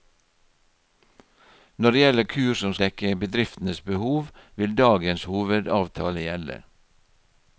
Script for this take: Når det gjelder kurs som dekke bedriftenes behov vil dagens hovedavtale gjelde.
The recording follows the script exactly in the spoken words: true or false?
true